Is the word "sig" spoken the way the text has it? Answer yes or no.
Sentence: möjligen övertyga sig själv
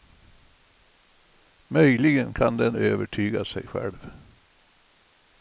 yes